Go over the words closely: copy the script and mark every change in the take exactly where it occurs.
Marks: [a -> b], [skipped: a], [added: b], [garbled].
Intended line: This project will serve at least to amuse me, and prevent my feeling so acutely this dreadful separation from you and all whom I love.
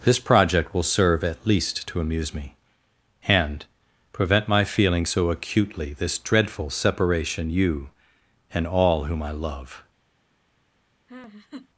This project will serve at least to amuse me, and prevent my feeling so acutely this dreadful separation [skipped: from] you and all whom I love.